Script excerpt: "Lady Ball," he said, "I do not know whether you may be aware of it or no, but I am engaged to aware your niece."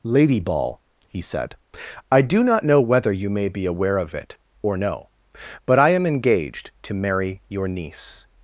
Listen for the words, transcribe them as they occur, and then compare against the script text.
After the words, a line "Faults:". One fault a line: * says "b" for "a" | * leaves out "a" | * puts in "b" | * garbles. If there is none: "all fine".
"Lady Ball," he said, "I do not know whether you may be aware of it or no, but I am engaged to marry your niece."
Faults:
* says "marry" for "aware"